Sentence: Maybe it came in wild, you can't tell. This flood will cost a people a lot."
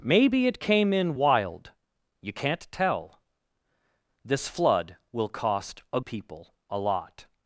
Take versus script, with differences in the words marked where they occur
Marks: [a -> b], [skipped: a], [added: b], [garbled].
Maybe it came in wild, you can't tell. This flood will cost a people a lot."